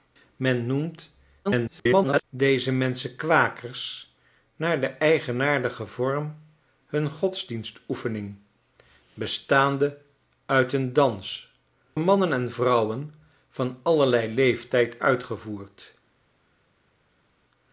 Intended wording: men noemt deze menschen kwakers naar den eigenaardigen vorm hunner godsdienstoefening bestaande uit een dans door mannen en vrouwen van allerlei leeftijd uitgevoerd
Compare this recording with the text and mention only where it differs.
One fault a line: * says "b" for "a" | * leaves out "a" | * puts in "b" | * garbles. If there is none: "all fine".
* garbles
* leaves out "door"